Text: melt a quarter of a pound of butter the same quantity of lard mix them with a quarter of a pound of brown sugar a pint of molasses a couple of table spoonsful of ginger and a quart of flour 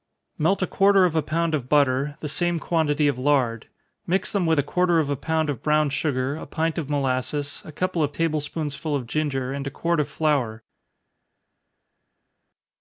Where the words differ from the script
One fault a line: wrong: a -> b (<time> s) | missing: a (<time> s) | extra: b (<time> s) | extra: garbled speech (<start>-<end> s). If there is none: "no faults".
no faults